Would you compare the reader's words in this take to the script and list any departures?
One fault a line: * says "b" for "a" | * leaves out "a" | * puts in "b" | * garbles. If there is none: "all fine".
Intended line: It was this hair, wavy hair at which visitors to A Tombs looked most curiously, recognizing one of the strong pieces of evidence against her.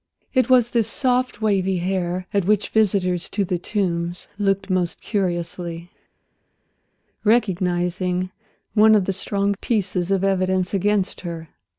* says "soft" for "hair"
* says "The" for "A"